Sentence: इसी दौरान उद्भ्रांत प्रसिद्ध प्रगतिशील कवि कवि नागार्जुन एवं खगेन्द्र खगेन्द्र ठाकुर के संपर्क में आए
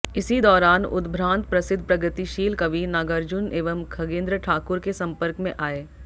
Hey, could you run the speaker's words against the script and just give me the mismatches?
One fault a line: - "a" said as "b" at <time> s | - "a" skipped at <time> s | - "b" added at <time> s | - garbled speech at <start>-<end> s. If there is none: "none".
- "कवि" skipped at 2.8 s
- "खगेन्द्र" skipped at 4.4 s